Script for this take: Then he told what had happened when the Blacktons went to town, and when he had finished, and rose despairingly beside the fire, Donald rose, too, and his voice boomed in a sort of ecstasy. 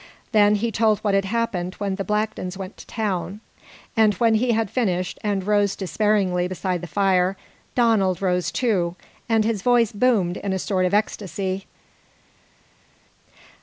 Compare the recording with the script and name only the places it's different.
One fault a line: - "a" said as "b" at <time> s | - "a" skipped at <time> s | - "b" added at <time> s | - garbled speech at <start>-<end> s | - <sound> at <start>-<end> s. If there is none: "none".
none